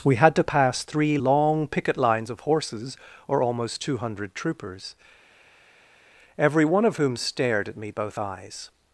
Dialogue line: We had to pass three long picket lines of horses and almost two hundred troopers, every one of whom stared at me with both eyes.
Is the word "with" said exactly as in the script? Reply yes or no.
no